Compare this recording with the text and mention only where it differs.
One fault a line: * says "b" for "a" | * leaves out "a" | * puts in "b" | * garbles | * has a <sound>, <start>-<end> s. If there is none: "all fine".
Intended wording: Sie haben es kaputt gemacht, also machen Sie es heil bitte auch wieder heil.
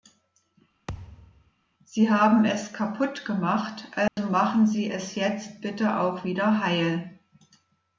* has a thud, 0.9-1.5 s
* has a dropout, 4.1-4.2 s
* says "jetzt" for "heil"